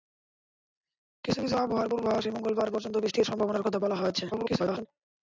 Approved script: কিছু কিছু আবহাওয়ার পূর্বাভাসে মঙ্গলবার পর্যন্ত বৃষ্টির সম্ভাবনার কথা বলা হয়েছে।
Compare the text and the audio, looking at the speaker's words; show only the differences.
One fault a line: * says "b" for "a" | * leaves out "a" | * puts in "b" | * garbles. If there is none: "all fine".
* garbles